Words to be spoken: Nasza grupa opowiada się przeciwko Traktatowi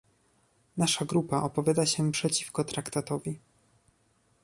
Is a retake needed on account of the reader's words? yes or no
no